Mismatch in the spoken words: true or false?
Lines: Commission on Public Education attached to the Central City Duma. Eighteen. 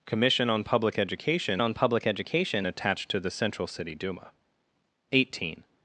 true